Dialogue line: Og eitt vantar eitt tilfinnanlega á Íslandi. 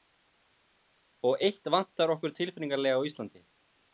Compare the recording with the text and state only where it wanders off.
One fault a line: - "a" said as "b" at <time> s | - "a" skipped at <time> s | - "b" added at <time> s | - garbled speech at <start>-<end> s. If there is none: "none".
- "eitt" said as "okkur" at 2.2 s